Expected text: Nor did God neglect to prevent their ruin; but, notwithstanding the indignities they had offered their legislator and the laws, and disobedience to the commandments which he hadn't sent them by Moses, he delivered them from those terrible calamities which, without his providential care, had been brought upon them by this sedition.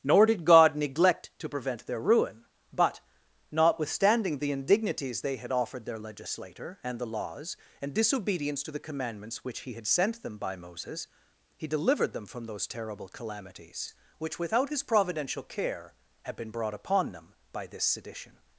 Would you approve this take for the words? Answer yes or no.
no